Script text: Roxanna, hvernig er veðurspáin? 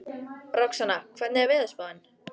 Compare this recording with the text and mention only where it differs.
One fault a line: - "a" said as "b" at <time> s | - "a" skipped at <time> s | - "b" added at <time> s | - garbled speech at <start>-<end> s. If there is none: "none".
none